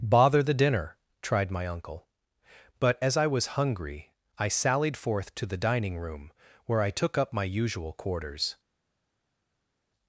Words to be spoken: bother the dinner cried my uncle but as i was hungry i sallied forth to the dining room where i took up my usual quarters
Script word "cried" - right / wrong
wrong